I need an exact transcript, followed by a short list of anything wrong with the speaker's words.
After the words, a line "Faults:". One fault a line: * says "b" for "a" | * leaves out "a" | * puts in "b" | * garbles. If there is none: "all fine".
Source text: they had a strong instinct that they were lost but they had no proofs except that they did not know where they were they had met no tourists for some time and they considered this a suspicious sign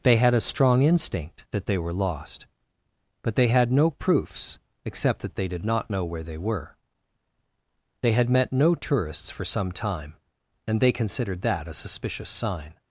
they had a strong instinct that they were lost but they had no proofs except that they did not know where they were they had met no tourists for some time and they considered that a suspicious sign
Faults:
* says "that" for "this"